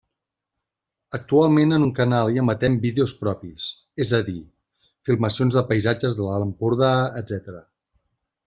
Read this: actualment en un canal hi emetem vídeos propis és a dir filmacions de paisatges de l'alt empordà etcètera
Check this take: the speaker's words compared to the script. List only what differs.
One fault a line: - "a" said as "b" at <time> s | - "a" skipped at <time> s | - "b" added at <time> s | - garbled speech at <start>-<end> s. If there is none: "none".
none